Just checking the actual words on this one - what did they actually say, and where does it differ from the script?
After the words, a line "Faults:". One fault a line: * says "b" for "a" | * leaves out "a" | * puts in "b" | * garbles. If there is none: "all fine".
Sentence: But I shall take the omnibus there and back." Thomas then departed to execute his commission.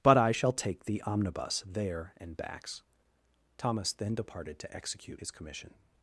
But I shall take the omnibus there and backs." Thomas then departed to execute his commission.
Faults:
* says "backs" for "back"